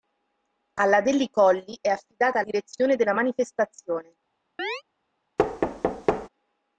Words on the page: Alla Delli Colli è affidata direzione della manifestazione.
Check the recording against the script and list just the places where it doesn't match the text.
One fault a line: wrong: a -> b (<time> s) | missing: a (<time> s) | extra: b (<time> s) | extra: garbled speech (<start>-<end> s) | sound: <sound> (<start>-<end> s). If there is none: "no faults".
sound: chirp (4.6-4.8 s)
sound: thud (5.4-6.3 s)